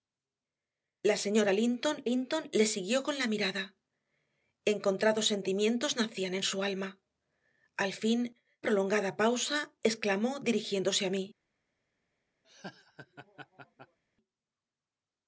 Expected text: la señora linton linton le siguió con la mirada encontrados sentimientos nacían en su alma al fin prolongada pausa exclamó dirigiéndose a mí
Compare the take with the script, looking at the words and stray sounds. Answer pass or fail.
fail